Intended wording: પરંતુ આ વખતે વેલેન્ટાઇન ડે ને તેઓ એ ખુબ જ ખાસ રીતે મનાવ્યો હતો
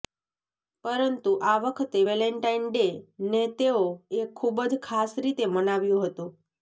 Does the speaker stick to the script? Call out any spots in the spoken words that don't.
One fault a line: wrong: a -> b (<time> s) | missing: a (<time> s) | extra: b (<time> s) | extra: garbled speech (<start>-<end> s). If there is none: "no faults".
no faults